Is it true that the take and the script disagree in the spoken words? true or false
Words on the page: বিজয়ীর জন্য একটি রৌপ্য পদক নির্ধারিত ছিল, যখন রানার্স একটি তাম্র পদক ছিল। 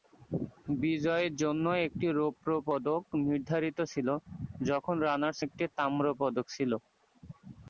false